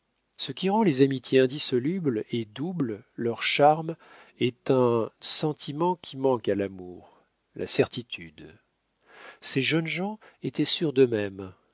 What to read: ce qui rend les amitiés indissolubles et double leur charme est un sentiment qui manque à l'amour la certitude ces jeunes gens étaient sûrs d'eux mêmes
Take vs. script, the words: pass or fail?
pass